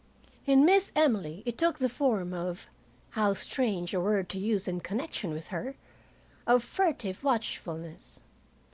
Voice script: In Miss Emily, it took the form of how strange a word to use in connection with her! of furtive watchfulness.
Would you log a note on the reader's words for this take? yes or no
no